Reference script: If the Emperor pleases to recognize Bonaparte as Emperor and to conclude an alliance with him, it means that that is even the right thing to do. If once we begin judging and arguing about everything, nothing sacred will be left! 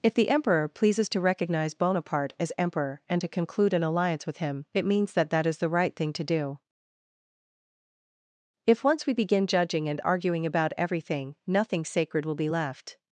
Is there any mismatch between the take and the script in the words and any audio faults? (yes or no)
yes